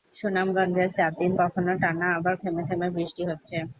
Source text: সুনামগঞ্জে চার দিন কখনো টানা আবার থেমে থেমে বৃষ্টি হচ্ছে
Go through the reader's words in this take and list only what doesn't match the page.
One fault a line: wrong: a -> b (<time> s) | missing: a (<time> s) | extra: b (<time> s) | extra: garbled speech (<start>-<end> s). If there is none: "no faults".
no faults